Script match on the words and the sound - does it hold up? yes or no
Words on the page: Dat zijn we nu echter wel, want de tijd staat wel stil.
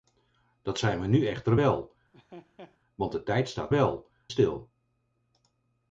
no